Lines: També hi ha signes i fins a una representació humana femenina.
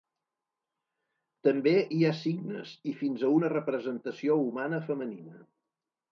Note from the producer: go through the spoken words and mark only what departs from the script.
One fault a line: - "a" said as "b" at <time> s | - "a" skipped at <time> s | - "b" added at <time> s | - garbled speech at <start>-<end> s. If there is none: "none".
none